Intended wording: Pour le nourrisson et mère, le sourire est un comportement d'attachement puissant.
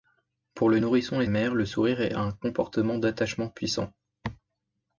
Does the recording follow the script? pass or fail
pass